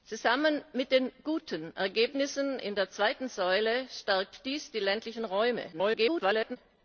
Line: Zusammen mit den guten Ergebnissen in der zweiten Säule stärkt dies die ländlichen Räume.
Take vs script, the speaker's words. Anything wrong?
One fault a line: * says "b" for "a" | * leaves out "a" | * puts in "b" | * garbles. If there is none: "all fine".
* garbles